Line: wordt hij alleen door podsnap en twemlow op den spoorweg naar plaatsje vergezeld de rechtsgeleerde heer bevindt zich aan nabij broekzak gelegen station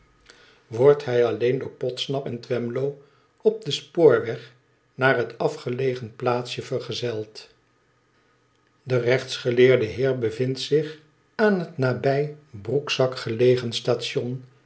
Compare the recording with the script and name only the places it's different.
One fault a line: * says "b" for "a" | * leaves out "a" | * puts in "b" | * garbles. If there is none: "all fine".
* puts in "het afgelegen"
* puts in "het"